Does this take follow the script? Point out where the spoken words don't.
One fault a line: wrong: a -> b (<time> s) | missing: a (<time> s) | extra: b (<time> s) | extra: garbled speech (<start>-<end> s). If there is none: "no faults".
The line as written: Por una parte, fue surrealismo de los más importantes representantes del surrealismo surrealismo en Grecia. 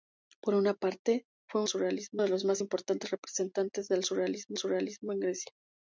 no faults